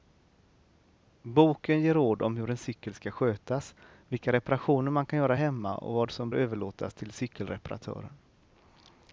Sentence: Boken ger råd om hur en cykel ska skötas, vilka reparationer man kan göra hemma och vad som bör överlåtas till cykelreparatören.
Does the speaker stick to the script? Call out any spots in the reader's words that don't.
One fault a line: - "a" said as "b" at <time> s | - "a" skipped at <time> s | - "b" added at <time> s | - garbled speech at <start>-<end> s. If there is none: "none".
- "bör" skipped at 6.3 s